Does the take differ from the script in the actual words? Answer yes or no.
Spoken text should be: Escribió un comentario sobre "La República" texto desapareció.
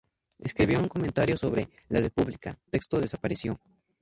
no